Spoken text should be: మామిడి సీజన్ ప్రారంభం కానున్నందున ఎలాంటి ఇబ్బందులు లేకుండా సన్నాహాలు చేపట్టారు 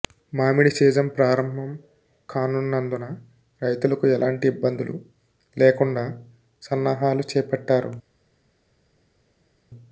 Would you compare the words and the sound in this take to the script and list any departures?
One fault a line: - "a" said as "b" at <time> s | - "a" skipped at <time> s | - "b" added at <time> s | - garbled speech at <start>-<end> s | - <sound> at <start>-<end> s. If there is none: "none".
- "రైతులకు" added at 3.6 s